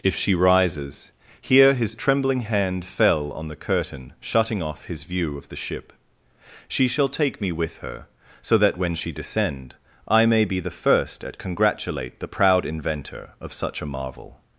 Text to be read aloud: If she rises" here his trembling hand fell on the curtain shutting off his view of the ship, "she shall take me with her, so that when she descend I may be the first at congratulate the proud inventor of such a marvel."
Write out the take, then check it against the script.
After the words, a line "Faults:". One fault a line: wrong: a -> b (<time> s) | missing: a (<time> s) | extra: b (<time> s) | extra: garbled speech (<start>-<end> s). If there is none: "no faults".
If she rises" here his trembling hand fell on the curtain shutting off his view of the ship, "she shall take me with her, so that when she descend I may be the first at congratulate the proud inventor of such a marvel."
Faults:
no faults